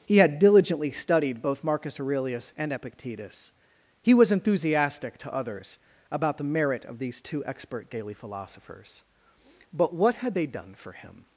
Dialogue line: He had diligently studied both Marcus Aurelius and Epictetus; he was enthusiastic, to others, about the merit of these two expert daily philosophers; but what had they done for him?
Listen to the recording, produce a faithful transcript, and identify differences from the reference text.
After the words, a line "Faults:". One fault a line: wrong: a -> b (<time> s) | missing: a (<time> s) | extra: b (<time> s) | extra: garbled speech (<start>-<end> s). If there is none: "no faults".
He had diligently studied both Marcus Aurelius and Epictetus; he was enthusiastic, to others, about the merit of these two expert daily philosophers; but what had they done for him?
Faults:
no faults